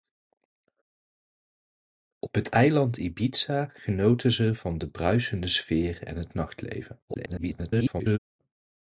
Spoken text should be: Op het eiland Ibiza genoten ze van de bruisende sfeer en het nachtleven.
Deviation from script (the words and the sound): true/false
true